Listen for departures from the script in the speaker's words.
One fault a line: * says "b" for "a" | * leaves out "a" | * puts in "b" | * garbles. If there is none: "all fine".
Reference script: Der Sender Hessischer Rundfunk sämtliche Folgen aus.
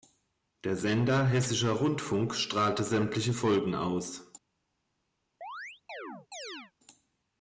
* puts in "strahlte"